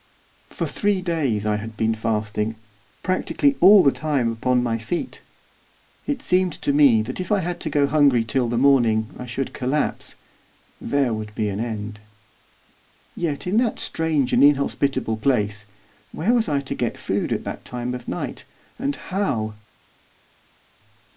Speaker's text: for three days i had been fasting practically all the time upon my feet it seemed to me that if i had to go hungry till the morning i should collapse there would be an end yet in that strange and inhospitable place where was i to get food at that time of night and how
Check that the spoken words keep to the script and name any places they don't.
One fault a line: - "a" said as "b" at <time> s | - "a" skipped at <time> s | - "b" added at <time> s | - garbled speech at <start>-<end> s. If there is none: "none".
none